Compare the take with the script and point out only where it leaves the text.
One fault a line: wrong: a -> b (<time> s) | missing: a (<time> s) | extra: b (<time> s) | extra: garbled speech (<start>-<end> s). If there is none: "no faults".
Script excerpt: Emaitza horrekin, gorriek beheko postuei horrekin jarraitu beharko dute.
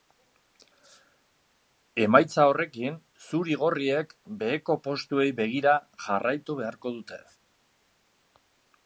extra: zuri (3.3 s)
wrong: horrekin -> begira (5.4 s)